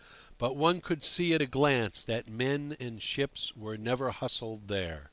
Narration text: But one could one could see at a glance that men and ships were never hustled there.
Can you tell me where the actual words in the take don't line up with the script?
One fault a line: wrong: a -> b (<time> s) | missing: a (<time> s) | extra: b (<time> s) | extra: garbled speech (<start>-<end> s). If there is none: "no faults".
missing: one could (1.0 s)